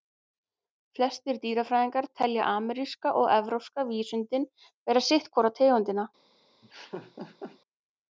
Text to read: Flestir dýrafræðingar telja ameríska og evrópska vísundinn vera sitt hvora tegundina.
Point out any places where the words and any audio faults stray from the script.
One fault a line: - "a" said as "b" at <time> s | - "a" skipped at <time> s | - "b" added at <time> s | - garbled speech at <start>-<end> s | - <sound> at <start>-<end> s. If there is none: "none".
- laugh at 6.6-7.6 s